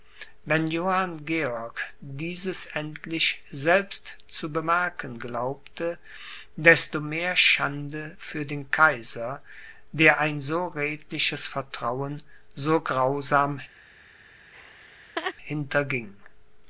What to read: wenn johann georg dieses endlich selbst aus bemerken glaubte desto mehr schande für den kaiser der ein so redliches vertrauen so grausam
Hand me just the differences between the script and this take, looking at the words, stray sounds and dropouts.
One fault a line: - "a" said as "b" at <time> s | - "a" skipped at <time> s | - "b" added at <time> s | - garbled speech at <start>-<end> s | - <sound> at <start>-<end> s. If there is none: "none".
- "aus" said as "zu" at 4.3 s
- laugh at 14.5-15.3 s